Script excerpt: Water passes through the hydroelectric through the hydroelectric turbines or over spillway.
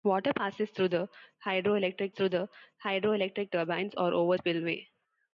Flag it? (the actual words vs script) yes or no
no